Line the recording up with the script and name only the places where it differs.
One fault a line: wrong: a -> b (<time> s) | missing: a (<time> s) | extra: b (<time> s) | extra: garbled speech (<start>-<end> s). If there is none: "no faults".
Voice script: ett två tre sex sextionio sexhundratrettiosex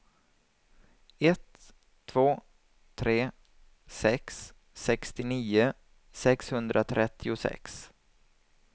no faults